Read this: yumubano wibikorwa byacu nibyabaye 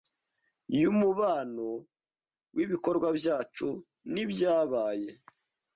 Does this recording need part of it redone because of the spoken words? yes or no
no